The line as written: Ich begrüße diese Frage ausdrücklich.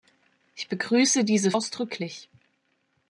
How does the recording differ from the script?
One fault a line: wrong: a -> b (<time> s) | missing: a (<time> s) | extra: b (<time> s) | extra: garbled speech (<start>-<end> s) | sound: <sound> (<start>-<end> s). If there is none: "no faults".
missing: Frage (1.5 s)